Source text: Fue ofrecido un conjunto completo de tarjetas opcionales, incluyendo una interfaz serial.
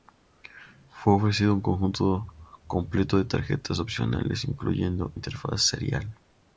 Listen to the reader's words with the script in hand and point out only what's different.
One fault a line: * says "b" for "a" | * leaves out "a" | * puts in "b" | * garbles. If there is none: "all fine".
* leaves out "una"